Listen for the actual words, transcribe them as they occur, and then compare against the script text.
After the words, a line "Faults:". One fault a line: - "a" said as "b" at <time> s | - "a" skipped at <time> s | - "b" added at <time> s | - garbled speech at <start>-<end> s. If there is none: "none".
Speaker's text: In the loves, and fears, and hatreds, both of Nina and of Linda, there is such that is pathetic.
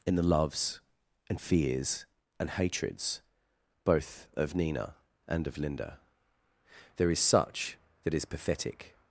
In the loves, and fears, and hatreds, both of Nina and of Linda, there is such that is pathetic.
Faults:
none